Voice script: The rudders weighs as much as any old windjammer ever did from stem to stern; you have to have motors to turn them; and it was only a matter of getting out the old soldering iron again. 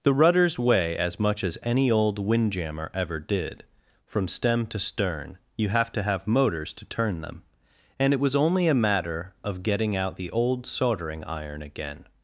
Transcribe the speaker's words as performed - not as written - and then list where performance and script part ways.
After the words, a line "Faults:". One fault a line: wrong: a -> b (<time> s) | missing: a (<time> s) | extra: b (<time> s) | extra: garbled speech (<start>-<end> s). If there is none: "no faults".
The rudders weigh as much as any old windjammer ever did from stem to stern; you have to have motors to turn them; and it was only a matter of getting out the old soldering iron again.
Faults:
wrong: weighs -> weigh (0.6 s)